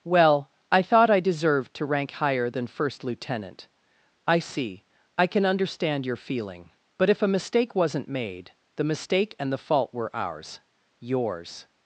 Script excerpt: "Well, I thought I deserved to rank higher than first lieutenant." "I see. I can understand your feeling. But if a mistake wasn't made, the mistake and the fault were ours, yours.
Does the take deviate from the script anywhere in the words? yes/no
no